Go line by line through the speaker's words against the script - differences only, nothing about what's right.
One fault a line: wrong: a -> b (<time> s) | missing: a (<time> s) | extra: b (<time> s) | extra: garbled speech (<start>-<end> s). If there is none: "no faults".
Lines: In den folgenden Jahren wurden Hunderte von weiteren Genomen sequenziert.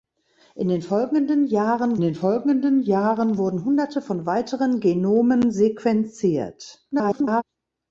extra: den folgenden Jahren (2.0 s)
extra: garbled speech (6.9-7.4 s)